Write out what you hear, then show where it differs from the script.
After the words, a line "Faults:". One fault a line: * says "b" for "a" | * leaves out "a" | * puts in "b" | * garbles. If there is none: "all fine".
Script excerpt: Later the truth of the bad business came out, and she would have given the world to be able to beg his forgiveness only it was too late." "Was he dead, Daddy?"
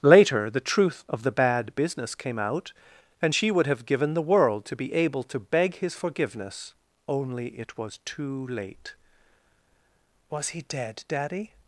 Later the truth of the bad business came out, and she would have given the world to be able to beg his forgiveness only it was too late." "Was he dead, Daddy?"
Faults:
all fine